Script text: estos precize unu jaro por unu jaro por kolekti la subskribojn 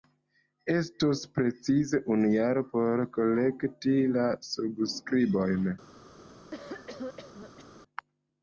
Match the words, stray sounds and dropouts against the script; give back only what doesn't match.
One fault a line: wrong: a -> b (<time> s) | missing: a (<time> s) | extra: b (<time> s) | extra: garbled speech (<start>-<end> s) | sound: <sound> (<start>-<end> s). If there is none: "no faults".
missing: unu jaro por (3.1 s)
sound: cough (6.5-7.7 s)